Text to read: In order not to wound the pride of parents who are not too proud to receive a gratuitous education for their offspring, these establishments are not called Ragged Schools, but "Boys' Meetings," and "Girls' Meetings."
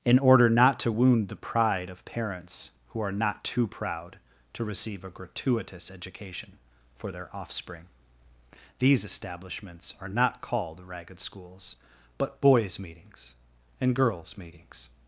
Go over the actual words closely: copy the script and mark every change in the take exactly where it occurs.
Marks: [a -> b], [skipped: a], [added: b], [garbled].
In order not to wound the pride of parents who are not too proud to receive a gratuitous education for their offspring, these establishments are not called Ragged Schools, but "Boys' Meetings," and "Girls' Meetings."